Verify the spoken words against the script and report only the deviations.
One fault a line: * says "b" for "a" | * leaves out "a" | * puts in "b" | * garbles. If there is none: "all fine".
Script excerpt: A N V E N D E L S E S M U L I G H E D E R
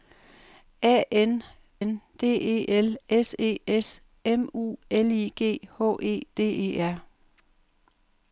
* leaves out "V E"